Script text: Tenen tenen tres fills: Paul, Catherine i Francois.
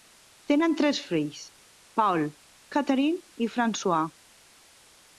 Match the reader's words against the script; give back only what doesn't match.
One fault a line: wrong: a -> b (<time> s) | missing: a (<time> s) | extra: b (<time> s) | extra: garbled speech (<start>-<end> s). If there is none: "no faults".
missing: tenen (0.7 s)